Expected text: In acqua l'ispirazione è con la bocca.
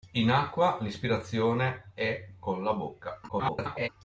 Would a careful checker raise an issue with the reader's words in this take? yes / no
yes